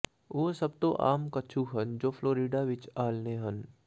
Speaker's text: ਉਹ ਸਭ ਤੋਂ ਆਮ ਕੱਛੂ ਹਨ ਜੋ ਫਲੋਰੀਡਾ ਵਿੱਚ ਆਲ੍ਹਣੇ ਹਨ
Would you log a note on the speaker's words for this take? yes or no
no